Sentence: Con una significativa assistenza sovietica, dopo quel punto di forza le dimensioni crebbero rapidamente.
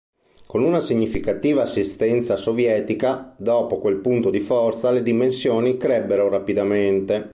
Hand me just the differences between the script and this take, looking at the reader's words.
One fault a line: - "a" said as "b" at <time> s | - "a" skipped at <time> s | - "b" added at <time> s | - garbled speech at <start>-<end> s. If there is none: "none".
none